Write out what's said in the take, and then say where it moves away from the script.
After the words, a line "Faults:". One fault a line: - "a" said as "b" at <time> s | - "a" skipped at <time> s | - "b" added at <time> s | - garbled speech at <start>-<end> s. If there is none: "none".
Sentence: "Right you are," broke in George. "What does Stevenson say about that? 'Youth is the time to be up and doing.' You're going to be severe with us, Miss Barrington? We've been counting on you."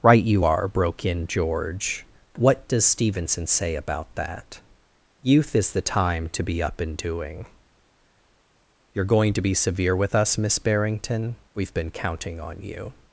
"Right you are," broke in George. "What does Stevenson say about that? 'Youth is the time to be up and doing.' You're going to be severe with us, Miss Barrington? We've been counting on you."
Faults:
none